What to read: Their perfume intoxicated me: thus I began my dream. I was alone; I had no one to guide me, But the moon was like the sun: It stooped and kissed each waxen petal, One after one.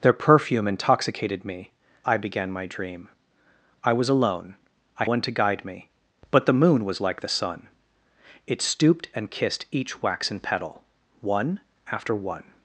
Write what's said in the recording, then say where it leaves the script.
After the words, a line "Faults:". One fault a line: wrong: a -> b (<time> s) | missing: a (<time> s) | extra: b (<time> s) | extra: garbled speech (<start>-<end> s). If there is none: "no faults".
Their perfume intoxicated me: I began my dream. I was alone; I one to guide me, But the moon was like the sun: It stooped and kissed each waxen petal, One after one.
Faults:
missing: thus (1.7 s)
missing: had no (5.1 s)